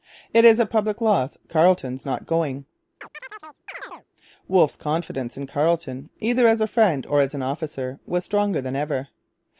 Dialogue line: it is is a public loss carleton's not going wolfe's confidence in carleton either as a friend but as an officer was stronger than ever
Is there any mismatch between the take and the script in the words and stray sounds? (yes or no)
yes